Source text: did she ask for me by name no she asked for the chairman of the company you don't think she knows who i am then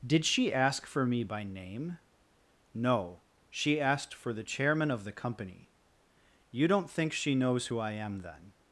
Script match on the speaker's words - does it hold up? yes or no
yes